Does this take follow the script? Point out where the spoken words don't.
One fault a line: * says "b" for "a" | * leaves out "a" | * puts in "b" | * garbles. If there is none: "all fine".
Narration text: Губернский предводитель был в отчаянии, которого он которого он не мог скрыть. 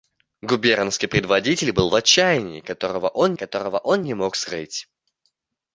all fine